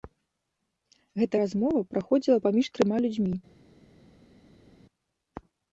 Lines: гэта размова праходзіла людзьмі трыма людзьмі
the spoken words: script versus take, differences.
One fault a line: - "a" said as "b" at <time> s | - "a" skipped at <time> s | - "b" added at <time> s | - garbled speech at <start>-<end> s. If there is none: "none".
- "людзьмі" said as "паміж" at 2.5 s